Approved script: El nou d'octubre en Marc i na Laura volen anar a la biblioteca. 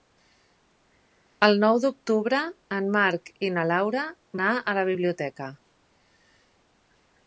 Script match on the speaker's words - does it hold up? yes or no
no